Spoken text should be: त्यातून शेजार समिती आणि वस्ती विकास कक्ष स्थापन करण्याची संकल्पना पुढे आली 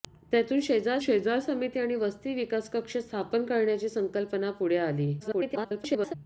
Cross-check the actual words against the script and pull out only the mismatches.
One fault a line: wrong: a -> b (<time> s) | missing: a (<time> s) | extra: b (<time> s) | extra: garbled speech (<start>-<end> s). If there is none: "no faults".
extra: शेजार (1.0 s)
extra: garbled speech (5.2-6.1 s)